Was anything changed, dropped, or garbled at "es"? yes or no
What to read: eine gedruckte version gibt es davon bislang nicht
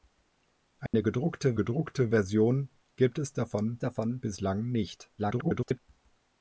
no